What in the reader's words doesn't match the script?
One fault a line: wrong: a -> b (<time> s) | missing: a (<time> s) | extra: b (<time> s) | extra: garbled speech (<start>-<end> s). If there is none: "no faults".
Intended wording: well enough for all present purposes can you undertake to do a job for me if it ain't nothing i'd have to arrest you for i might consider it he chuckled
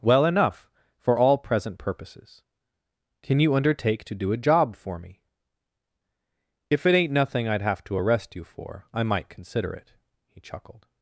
no faults